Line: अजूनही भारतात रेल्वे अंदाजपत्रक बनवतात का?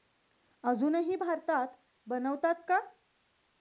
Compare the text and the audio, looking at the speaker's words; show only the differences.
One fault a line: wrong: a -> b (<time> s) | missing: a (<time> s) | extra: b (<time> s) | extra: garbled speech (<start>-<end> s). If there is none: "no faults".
missing: रेल्वे अंदाजपत्रक (1.8 s)